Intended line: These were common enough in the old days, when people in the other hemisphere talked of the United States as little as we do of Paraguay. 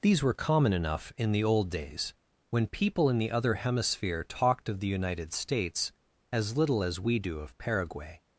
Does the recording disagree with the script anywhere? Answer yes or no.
no